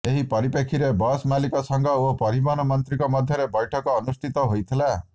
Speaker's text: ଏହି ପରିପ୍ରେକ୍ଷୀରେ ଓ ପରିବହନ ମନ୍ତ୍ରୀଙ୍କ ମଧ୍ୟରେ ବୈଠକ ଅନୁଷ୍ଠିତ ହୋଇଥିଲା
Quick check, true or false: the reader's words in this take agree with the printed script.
false